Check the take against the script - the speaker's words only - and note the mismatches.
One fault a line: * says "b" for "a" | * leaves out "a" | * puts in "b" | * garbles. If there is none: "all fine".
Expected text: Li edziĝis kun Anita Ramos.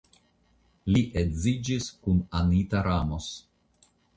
all fine